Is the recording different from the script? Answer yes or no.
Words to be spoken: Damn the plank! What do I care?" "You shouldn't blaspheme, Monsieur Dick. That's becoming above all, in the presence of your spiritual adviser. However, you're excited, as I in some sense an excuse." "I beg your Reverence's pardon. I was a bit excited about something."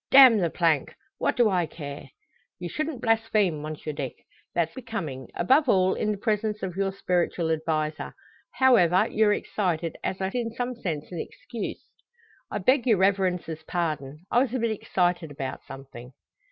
no